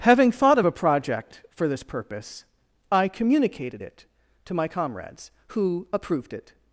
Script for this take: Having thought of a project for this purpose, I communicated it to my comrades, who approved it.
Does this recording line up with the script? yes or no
yes